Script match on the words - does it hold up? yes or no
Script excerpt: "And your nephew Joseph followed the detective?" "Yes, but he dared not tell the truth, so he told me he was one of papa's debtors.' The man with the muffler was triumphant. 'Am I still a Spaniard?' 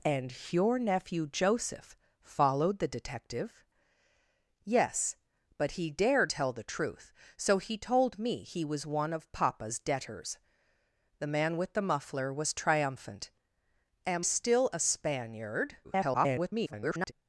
no